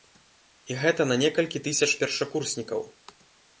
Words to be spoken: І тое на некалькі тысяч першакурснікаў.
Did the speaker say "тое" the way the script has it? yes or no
no